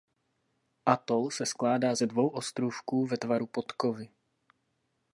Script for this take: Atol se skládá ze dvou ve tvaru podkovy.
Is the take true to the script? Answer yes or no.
no